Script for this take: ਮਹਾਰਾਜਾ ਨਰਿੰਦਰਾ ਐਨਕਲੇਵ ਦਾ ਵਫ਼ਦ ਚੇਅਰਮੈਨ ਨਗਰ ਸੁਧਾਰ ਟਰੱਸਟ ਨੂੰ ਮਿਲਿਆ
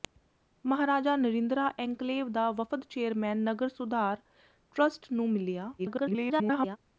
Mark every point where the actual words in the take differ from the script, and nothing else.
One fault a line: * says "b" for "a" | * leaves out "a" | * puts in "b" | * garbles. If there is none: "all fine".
* garbles